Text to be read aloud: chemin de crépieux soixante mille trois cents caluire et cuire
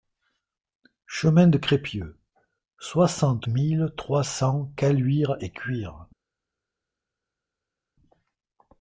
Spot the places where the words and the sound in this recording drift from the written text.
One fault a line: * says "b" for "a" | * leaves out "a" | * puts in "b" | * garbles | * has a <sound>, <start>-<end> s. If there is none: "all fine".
all fine